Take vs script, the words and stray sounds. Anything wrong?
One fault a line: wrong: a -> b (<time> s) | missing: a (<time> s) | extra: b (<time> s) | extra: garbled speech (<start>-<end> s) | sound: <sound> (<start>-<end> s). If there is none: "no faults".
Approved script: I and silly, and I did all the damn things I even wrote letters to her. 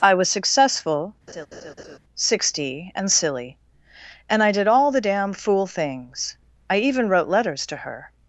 extra: was successful sixty (0.1 s)
sound: laugh (1.3-2.0 s)
extra: fool (5.3 s)